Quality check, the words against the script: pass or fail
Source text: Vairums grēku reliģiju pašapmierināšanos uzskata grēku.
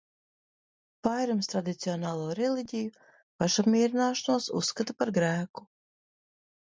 fail